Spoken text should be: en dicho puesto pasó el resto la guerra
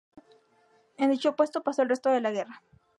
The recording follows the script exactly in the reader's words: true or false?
false